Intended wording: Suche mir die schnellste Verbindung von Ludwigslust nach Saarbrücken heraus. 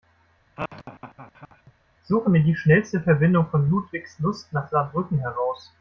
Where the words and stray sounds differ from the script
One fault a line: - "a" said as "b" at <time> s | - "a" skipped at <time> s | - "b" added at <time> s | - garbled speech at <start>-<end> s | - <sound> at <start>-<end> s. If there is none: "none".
- laugh at 0.6-1.7 s